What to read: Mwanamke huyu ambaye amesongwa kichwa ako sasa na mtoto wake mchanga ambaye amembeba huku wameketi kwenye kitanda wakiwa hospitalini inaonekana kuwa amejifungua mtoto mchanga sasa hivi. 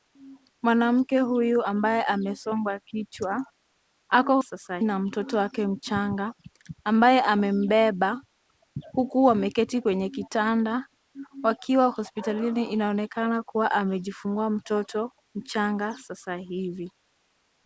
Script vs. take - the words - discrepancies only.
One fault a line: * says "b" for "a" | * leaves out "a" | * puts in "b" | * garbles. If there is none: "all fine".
all fine